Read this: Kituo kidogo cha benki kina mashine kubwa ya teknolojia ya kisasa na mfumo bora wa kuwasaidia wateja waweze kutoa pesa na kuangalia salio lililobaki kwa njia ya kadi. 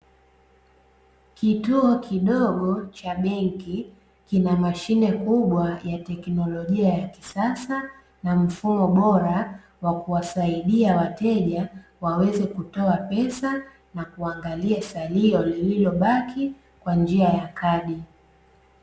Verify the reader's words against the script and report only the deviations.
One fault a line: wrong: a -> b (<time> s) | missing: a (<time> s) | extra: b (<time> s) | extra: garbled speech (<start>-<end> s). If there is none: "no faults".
no faults